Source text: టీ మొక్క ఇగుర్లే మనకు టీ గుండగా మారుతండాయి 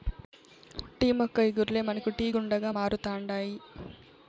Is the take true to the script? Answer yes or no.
yes